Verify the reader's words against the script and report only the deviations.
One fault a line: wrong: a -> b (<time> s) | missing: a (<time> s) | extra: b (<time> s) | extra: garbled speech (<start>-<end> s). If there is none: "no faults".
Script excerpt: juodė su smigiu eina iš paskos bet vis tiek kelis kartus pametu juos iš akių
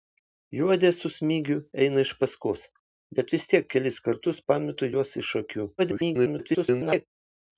extra: garbled speech (5.8-7.1 s)